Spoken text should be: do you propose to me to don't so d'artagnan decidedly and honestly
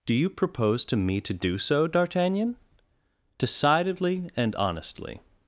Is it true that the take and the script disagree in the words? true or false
true